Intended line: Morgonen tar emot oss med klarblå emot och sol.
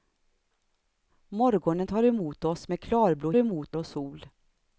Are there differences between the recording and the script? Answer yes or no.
no